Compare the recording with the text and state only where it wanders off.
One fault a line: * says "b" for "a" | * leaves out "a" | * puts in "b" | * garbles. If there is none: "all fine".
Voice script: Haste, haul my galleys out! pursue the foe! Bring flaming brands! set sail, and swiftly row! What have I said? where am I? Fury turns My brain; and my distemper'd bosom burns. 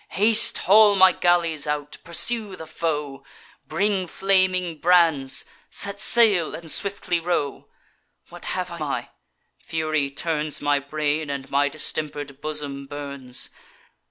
* leaves out "said where am"